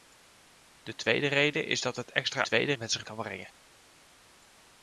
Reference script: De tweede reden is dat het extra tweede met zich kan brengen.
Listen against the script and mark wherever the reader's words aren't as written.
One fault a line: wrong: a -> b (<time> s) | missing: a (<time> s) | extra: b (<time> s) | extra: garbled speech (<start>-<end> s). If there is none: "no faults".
no faults